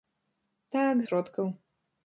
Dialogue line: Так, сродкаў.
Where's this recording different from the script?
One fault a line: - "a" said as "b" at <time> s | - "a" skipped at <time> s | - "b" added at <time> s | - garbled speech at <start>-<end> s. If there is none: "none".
none